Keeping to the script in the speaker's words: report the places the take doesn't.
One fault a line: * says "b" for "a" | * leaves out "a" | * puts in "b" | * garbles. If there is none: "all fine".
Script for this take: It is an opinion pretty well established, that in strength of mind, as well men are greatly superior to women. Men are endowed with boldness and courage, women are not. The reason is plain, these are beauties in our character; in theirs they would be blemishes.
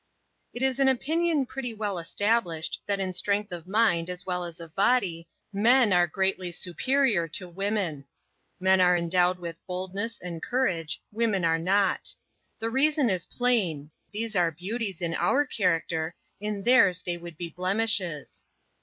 * puts in "as of body"